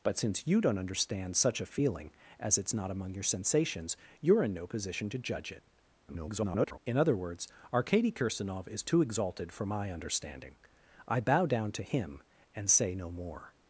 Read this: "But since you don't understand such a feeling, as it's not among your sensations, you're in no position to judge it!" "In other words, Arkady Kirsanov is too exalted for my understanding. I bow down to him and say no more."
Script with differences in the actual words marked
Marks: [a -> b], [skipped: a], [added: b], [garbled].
"But since you don't understand such a feeling, as it's not among your sensations, you're in no position to judge it!" [garbled] "In other words, Arkady Kirsanov is too exalted for my understanding. I bow down to him and say no more."